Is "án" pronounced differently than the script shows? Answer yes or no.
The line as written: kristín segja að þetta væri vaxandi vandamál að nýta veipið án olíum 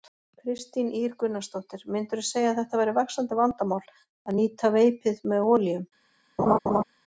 yes